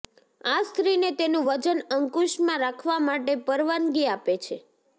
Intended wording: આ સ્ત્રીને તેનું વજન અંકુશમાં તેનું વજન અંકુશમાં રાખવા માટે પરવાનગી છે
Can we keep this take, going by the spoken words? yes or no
no